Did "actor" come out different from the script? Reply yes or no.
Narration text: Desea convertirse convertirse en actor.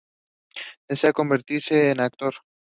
no